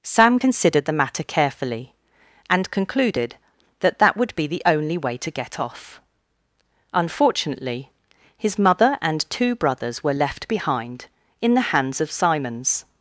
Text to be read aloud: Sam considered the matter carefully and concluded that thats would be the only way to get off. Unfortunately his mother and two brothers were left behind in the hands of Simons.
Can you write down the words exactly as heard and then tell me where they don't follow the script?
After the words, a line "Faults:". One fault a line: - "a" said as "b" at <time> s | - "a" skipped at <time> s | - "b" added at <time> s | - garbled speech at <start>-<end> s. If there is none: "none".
Sam considered the matter carefully and concluded that that would be the only way to get off. Unfortunately his mother and two brothers were left behind in the hands of Simons.
Faults:
- "thats" said as "that" at 4.0 s